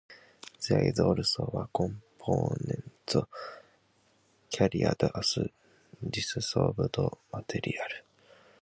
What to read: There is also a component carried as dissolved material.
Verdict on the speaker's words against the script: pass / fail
pass